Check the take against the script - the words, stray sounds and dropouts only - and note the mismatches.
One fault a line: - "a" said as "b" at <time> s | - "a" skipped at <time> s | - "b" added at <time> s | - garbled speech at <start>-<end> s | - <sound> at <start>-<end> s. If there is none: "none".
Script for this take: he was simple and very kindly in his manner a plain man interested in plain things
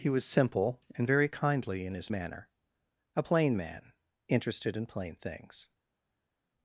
none